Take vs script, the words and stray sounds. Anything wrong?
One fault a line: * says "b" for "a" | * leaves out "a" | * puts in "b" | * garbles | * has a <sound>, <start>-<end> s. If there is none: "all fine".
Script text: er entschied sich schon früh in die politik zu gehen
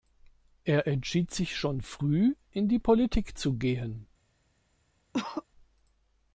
* has a cough, 5.1-5.4 s